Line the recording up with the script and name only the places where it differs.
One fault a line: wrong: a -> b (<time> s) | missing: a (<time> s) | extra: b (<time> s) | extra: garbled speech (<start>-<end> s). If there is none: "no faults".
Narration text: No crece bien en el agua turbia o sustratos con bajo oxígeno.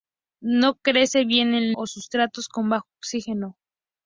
missing: el agua turbia (1.8 s)